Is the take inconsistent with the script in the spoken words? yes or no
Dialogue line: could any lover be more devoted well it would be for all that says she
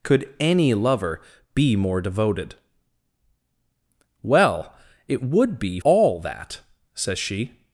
yes